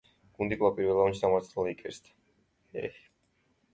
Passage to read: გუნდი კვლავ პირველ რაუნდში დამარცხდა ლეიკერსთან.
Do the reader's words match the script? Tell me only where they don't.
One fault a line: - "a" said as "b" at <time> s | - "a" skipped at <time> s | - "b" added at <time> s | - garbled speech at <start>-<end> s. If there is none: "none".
none